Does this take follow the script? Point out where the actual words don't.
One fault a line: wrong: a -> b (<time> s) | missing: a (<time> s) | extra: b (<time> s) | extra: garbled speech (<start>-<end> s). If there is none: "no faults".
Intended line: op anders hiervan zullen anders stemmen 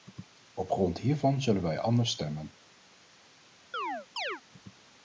wrong: anders -> grond (0.7 s)
extra: wij (1.6 s)